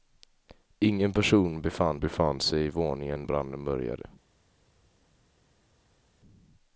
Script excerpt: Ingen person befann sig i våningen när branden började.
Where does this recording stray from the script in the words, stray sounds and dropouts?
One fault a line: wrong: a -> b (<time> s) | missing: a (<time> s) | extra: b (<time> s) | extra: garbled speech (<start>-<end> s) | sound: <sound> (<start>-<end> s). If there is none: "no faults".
extra: befann (2.0 s)
missing: när (3.2 s)